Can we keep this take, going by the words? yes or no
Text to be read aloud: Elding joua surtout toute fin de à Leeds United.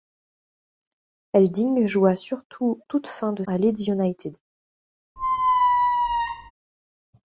yes